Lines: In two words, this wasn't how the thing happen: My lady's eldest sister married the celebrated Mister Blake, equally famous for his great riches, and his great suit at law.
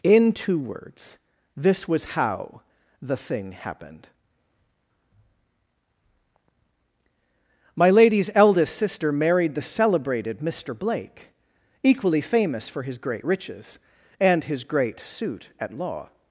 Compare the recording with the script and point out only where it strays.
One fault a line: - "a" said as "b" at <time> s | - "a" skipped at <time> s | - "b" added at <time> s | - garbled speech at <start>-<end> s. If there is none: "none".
- "wasn't" said as "was" at 1.9 s
- "happen" said as "happened" at 3.5 s